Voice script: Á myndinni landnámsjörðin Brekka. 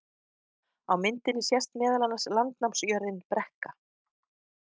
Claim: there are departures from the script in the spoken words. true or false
true